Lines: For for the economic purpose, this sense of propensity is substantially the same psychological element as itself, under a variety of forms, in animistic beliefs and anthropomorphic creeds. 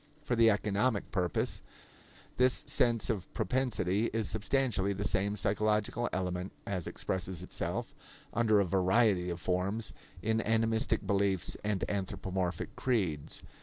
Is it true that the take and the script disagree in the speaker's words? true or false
true